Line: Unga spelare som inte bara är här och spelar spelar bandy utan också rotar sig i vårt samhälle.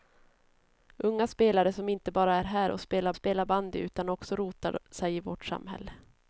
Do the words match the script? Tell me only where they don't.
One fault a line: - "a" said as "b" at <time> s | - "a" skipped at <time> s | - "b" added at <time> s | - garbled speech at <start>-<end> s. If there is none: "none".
none